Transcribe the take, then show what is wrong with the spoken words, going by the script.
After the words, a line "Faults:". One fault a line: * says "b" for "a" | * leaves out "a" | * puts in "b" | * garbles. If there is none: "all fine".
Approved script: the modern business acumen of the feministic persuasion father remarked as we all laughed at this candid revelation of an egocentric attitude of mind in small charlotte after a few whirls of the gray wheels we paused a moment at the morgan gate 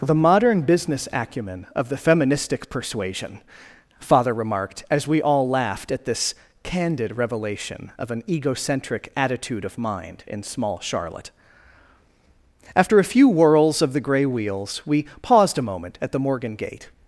the modern business acumen of the feministic persuasion father remarked as we all laughed at this candid revelation of an egocentric attitude of mind in small charlotte after a few whirls of the gray wheels we paused a moment at the morgan gate
Faults:
all fine